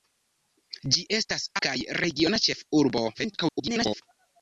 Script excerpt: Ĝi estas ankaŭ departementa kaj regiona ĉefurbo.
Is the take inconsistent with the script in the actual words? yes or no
yes